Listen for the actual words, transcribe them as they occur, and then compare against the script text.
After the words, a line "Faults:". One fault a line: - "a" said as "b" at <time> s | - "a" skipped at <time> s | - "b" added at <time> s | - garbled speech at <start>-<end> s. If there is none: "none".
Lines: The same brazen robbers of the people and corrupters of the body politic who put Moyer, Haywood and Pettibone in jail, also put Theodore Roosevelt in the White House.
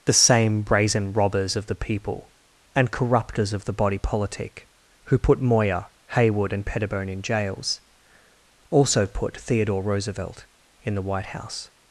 The same brazen robbers of the people and corrupters of the body politic who put Moyer, Haywood and Pettibone in jails, also put Theodore Roosevelt in the White House.
Faults:
- "jail" said as "jails" at 7.2 s